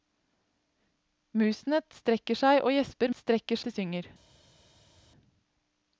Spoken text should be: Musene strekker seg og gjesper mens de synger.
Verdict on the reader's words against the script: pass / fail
fail